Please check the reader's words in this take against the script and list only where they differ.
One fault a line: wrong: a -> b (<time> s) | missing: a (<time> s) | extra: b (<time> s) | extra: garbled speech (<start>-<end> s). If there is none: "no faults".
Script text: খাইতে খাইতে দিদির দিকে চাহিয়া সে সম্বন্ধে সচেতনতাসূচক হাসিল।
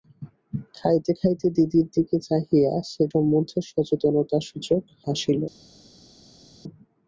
no faults